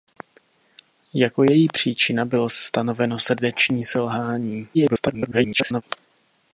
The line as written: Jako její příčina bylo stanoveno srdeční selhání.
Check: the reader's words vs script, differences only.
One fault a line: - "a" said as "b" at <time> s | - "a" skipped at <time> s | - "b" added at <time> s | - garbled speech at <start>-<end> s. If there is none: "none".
- garbled speech at 4.7-5.8 s